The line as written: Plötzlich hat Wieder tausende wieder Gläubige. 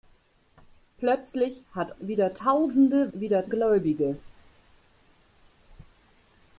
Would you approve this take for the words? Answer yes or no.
yes